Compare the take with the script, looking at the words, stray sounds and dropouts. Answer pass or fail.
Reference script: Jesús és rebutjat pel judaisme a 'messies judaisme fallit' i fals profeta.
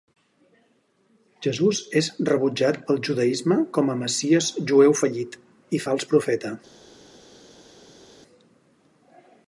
fail